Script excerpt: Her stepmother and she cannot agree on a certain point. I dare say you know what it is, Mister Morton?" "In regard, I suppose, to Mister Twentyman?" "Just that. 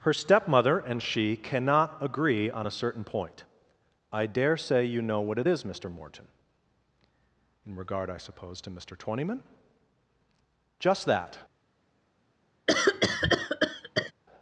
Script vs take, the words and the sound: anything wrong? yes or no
yes